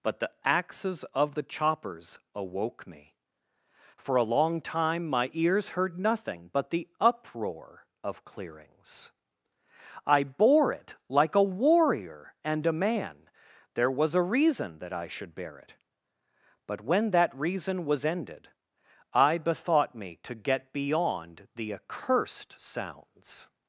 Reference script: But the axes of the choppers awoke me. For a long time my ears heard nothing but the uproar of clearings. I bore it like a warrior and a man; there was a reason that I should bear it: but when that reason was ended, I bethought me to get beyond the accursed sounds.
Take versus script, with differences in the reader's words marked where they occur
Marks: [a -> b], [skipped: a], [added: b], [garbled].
But the axes of the choppers awoke me. For a long time my ears heard nothing but the uproar of clearings. I bore it like a warrior and a man; there was a reason that I should bear it: but when that reason was ended, I bethought me to get beyond the accursed sounds.